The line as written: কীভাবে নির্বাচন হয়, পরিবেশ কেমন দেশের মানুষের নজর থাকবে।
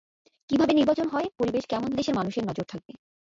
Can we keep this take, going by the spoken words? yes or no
yes